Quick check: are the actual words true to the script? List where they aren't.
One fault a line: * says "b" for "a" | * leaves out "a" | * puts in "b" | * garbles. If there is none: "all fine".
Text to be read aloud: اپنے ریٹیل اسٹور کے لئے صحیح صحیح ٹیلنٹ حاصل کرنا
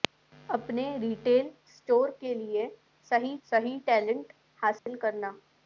all fine